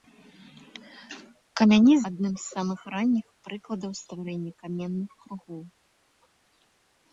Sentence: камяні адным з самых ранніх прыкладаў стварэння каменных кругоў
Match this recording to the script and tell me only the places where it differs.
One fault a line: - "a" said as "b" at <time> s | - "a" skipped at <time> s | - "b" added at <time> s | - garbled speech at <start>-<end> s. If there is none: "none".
none